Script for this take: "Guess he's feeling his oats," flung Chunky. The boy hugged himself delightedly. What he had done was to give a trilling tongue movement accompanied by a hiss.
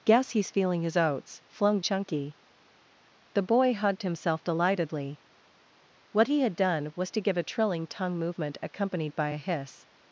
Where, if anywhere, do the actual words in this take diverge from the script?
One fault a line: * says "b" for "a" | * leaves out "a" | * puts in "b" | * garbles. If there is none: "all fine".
all fine